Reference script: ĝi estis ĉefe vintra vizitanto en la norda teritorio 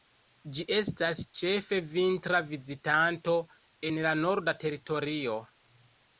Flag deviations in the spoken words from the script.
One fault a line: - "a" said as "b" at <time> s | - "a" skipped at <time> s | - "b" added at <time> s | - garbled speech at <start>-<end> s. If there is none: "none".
- "estis" said as "estas" at 0.8 s